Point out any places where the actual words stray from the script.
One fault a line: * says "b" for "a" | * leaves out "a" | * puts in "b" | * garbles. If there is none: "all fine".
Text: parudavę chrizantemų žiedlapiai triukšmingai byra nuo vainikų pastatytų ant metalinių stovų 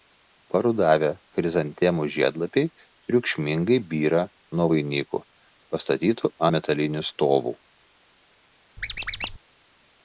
* leaves out "ant"